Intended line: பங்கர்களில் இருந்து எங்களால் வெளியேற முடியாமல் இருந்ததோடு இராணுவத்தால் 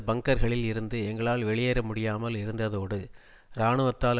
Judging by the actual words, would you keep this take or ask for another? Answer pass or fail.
pass